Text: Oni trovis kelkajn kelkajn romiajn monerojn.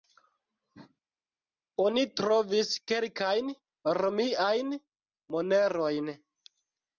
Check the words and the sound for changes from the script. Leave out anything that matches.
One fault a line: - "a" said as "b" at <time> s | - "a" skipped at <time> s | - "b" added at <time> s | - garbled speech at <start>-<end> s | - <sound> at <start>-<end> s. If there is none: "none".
- "kelkajn" skipped at 3.5 s